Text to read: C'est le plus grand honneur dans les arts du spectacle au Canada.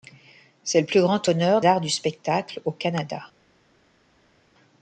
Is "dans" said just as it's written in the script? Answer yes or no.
no